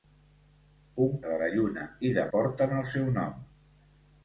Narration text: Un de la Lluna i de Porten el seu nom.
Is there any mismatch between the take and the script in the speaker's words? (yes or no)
no